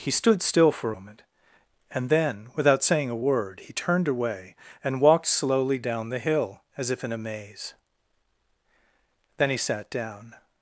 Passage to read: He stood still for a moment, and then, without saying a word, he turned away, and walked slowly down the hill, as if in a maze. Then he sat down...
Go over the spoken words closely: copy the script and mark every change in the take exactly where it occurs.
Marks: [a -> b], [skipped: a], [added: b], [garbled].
He stood still for [skipped: a] moment, and then, without saying a word, he turned away, and walked slowly down the hill, as if in a maze. Then he sat down...